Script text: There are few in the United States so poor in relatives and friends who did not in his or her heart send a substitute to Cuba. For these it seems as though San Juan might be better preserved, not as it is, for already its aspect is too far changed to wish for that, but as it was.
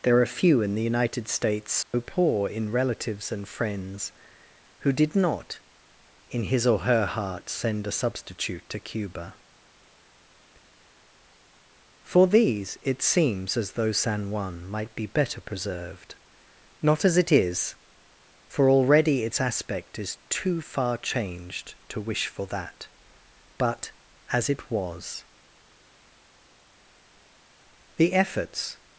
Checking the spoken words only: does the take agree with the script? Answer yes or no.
no